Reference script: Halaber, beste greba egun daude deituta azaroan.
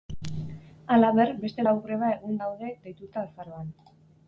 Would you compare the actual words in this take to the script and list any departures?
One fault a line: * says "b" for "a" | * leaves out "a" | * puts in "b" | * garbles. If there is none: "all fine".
* puts in "lau"